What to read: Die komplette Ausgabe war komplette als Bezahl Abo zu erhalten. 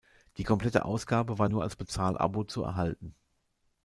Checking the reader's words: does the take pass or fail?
fail